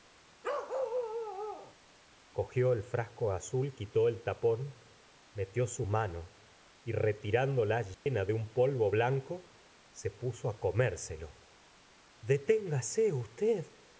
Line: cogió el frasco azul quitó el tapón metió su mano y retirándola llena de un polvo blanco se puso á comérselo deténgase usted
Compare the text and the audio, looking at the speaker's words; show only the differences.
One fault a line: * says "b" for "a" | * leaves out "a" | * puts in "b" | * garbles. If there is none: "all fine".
all fine